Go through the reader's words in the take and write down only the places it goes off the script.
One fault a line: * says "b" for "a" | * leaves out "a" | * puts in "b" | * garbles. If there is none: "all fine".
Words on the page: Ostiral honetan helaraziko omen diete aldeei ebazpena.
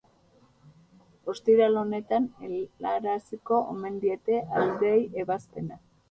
all fine